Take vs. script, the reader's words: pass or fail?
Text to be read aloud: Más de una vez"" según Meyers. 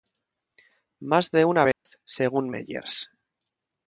pass